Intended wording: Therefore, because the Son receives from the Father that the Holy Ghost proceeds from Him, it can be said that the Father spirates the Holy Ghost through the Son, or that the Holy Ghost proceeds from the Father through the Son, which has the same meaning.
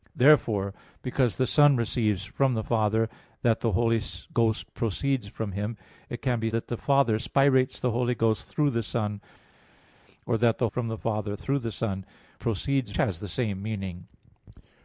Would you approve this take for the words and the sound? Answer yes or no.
no